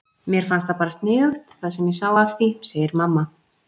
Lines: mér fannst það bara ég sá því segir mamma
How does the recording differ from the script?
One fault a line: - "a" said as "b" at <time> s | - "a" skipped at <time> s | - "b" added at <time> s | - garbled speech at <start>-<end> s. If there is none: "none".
- "sniðugt það sem" added at 0.9 s
- "af" added at 2.2 s